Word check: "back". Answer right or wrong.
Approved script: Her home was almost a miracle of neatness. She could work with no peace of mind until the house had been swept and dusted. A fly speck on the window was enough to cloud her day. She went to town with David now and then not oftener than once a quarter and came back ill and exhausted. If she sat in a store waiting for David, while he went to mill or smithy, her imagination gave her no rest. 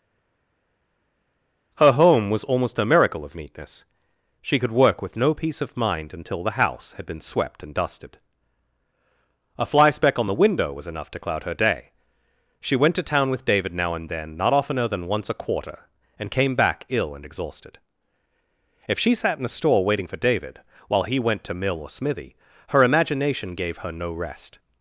right